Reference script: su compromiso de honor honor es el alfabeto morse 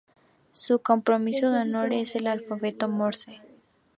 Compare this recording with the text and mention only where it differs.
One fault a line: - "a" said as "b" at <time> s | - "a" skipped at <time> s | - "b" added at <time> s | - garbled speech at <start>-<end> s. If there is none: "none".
- "honor" skipped at 1.9 s